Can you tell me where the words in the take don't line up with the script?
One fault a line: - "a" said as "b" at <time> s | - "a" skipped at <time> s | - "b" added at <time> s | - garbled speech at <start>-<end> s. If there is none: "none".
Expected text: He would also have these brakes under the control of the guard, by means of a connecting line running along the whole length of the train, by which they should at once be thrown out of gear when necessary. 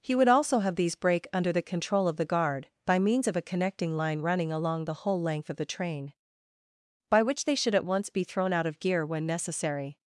- "brakes" said as "brake" at 0.9 s